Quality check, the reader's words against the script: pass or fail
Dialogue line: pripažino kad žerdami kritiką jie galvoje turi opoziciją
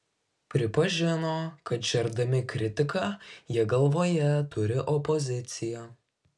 pass